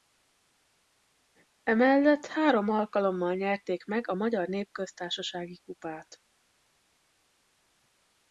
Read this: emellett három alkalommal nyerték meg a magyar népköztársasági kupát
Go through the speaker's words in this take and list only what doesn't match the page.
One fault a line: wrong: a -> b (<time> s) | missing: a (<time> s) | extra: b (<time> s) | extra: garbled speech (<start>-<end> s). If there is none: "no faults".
no faults